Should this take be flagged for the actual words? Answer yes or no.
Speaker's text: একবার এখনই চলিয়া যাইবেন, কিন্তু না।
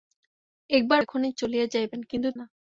no